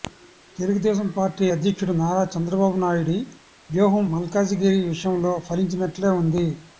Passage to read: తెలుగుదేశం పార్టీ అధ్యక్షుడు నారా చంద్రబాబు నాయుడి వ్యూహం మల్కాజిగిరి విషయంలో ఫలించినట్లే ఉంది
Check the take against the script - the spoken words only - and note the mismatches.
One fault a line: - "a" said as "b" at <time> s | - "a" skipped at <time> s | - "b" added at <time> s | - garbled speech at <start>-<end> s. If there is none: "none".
none